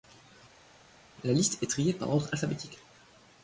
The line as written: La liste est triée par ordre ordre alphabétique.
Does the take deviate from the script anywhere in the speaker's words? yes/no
yes